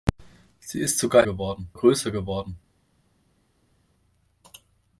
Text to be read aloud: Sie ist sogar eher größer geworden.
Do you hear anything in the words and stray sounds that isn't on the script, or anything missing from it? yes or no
yes